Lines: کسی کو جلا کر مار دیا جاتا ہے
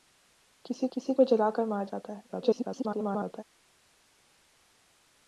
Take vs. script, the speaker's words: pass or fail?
fail